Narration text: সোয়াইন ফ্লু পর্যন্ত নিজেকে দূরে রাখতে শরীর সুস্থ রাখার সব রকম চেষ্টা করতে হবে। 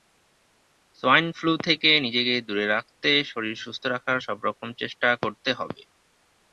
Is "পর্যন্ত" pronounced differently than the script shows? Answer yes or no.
yes